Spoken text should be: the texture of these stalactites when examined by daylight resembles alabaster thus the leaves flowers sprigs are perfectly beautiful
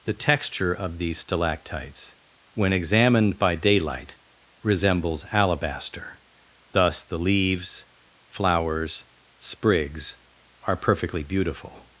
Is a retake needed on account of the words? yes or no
no